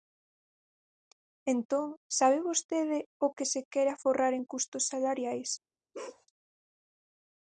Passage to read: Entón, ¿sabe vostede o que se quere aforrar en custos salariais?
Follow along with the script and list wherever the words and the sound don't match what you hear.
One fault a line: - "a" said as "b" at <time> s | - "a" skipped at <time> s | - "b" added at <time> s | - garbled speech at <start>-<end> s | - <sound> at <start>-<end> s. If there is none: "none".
- bark at 5.9-6.3 s